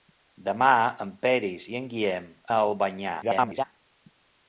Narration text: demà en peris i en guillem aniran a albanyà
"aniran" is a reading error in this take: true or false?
true